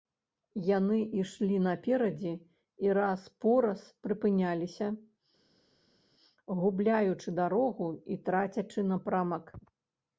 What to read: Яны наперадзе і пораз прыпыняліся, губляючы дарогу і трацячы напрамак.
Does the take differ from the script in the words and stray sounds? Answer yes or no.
yes